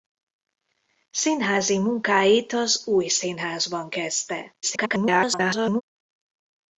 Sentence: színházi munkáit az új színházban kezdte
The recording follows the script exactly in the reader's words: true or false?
false